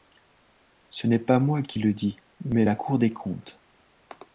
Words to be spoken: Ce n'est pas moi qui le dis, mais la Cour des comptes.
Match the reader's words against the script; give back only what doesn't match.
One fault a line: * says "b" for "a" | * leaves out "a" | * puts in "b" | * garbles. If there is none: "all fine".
all fine